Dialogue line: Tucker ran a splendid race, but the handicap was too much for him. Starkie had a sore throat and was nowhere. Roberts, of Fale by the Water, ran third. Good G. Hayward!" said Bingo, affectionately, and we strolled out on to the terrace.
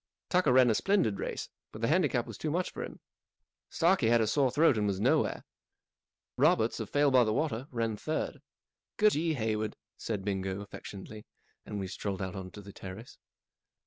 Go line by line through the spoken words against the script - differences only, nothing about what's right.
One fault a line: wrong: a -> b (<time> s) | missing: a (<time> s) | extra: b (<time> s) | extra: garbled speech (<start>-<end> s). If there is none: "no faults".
no faults